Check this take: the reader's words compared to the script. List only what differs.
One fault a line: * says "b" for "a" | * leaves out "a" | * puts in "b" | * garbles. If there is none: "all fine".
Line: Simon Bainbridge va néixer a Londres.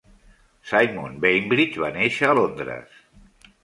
all fine